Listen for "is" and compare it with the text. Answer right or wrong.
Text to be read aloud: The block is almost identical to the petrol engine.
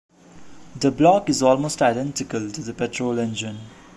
right